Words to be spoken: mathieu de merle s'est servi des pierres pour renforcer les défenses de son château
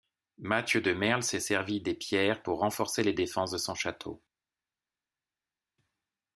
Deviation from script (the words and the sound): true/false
false